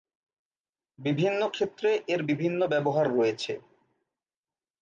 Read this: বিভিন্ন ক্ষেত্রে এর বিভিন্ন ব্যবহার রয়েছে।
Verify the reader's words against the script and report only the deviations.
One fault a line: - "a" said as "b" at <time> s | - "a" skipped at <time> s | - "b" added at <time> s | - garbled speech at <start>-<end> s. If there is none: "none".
none